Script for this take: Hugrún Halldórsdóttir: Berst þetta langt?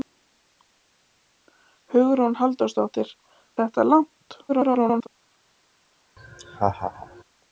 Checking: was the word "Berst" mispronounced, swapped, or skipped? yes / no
yes